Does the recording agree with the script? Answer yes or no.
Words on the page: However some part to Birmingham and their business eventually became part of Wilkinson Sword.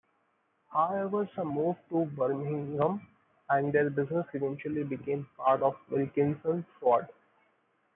no